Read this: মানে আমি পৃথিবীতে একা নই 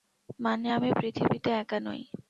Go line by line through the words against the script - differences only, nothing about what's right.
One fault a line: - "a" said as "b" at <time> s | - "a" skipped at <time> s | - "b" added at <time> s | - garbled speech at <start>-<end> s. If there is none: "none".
none